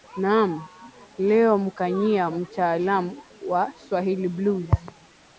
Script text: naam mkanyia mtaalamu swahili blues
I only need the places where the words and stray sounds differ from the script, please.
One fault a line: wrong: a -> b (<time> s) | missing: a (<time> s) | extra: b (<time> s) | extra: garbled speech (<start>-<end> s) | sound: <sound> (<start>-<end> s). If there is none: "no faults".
extra: leo (1.2 s)
extra: wa (3.5 s)